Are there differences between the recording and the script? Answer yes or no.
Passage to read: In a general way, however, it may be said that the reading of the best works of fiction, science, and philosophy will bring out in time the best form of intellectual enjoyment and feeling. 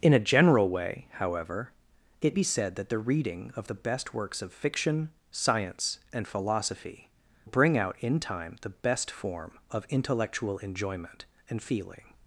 yes